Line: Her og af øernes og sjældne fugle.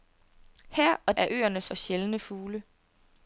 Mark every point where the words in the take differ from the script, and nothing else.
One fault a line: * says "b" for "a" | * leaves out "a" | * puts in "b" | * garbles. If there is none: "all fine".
all fine